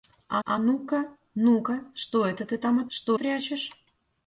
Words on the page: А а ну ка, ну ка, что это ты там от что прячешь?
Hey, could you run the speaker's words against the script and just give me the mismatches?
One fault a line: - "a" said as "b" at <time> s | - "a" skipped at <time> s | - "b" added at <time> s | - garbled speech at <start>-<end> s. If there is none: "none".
none